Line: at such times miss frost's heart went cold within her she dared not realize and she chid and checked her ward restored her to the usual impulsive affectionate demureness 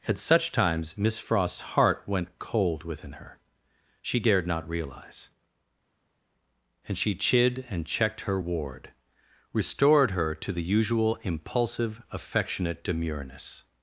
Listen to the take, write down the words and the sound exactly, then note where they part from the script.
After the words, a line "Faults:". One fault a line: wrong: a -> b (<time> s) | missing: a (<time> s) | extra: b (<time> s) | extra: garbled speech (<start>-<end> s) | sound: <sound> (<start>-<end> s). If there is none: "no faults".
at such times miss frost's heart went cold within her she dared not realize and she chid and checked her ward restored her to the usual impulsive affectionate demureness
Faults:
no faults